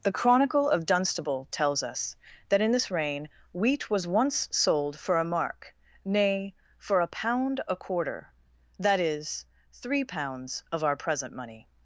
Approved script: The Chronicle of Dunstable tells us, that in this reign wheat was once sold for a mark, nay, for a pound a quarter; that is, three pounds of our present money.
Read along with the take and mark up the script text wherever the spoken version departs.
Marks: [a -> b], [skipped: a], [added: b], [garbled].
The Chronicle of Dunstable tells us, that in this reign wheat was once sold for a mark, nay, for a pound a quarter; that is, three pounds of our present money.